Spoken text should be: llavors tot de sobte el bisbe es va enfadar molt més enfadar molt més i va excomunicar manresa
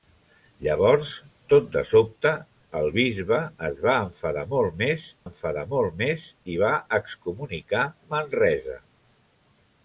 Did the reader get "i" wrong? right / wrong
right